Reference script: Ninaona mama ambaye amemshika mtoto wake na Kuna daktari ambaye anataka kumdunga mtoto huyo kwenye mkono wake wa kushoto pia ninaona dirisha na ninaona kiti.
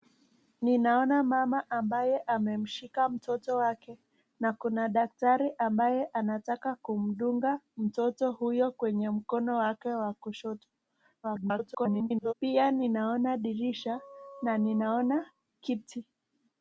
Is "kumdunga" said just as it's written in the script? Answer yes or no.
yes